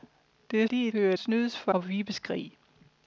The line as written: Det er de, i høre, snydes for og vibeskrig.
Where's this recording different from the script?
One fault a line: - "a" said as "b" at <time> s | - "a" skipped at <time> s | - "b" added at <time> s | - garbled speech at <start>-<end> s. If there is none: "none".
none